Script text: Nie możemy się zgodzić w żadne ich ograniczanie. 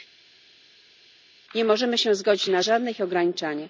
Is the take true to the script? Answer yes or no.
no